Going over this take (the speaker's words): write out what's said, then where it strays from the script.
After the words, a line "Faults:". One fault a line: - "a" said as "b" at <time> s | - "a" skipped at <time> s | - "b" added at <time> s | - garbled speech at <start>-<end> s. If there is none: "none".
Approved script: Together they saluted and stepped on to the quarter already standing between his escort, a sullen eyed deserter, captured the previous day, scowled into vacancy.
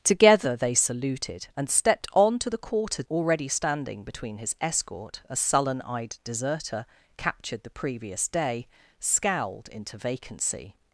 Together they saluted and stepped on to the quarter already standing between his escort, a sullen eyed deserter, captured the previous day, scowled into vacancy.
Faults:
none